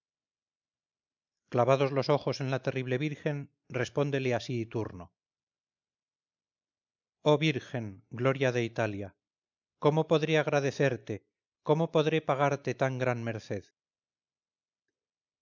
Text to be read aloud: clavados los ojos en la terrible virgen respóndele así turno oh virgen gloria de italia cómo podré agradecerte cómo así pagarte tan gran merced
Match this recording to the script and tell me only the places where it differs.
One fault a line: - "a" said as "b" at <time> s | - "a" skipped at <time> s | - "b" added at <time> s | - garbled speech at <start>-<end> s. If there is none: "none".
- "así" said as "podré" at 11.9 s